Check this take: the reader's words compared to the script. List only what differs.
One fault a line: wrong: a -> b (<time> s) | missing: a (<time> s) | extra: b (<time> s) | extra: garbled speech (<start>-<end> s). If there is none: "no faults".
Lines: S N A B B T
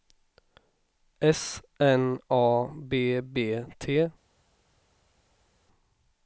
no faults